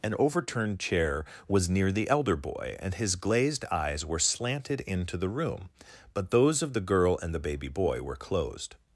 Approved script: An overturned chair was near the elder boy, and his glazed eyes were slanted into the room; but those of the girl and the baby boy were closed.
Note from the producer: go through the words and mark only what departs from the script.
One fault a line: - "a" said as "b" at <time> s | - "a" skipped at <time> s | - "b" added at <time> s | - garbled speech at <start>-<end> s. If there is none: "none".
none